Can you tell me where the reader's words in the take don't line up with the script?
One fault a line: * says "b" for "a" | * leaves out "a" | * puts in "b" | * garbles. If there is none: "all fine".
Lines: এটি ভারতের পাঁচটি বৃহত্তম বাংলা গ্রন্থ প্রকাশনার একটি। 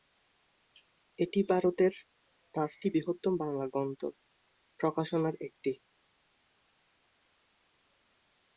all fine